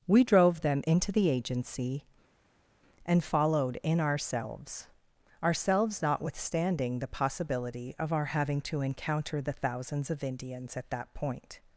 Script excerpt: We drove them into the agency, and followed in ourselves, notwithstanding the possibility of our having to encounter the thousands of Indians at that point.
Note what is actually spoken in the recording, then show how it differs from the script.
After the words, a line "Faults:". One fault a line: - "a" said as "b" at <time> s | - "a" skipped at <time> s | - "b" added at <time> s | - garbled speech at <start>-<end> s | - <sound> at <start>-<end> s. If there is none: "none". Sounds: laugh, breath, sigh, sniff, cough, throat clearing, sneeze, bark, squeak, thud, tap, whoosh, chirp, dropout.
We drove them into the agency, and followed in ourselves ourselves, notwithstanding the possibility of our having to encounter the thousands of Indians at that point.
Faults:
- "ourselves" added at 5.4 s